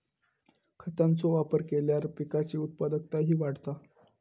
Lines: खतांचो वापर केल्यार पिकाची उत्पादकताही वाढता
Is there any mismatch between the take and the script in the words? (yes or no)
no